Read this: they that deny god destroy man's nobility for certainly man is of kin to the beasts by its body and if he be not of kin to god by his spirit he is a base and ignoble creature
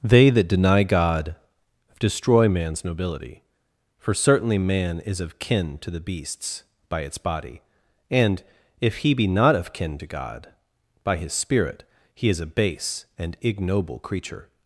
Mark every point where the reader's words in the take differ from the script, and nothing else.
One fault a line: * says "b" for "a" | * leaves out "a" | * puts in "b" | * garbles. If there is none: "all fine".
all fine